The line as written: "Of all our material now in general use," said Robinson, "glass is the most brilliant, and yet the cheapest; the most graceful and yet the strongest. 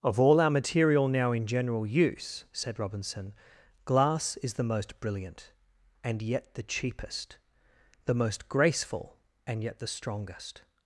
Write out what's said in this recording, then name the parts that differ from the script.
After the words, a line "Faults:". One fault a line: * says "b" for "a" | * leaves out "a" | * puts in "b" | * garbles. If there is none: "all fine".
"Of all our material now in general use," said Robinson, "glass is the most brilliant, and yet the cheapest; the most graceful and yet the strongest.
Faults:
all fine